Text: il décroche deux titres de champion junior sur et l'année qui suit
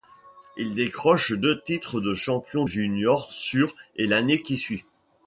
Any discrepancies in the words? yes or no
no